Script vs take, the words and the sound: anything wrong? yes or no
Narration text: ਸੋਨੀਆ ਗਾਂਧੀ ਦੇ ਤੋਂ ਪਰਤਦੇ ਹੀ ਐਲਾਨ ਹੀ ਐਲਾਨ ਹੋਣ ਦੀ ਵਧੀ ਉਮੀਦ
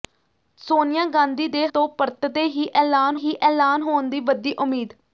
no